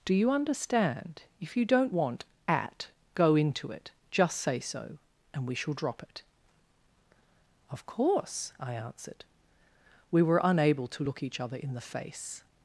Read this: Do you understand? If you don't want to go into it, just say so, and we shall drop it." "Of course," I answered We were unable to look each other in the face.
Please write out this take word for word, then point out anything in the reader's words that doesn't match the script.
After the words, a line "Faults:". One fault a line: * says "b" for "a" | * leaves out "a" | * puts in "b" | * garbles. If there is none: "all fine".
Do you understand? If you don't want at go into it, just say so, and we shall drop it." "Of course," I answered We were unable to look each other in the face.
Faults:
* says "at" for "to"